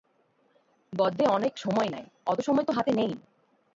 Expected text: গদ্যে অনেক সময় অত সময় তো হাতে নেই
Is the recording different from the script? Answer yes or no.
yes